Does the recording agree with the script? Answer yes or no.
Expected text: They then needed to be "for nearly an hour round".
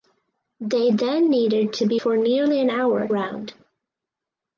yes